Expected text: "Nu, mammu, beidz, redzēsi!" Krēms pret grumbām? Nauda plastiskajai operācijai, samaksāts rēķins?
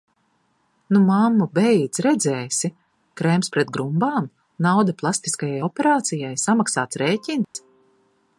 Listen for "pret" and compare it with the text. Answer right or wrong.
right